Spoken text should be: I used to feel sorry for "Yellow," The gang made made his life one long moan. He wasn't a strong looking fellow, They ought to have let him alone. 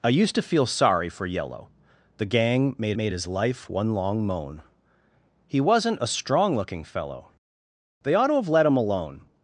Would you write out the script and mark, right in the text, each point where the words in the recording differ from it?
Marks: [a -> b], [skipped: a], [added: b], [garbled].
I used to feel sorry for "Yellow," The gang made made his life one long moan. He wasn't a strong looking fellow, They ought to have let him alone.